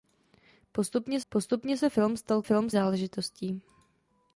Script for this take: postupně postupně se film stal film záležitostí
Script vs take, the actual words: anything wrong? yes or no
no